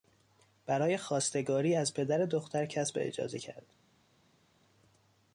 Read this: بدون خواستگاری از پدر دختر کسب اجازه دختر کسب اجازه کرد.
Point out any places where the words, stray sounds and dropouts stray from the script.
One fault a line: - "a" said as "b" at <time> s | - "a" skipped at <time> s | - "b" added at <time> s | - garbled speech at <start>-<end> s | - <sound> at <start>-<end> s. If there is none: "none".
- "بدون" said as "برای" at 0.7 s
- "دختر کسب اجازه" skipped at 3.4 s